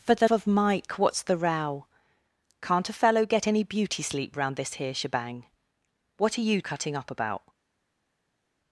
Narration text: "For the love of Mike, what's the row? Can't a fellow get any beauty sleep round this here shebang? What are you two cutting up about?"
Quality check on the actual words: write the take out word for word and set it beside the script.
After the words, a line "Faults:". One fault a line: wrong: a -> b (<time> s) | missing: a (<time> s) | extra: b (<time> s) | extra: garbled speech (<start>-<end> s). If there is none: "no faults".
"For the of Mike, what's the row? Can't a fellow get any beauty sleep round this here shebang? What are you cutting up about?"
Faults:
missing: love (0.3 s)
missing: two (6.6 s)